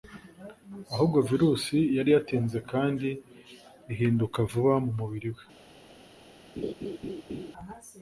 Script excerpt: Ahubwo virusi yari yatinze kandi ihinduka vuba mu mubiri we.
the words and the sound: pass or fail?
fail